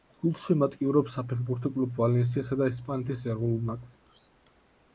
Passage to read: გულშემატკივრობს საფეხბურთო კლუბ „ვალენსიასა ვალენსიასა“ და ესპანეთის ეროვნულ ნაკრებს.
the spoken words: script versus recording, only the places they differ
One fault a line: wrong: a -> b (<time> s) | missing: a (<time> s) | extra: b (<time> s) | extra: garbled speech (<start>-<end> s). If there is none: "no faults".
missing: ვალენსიასა (2.6 s)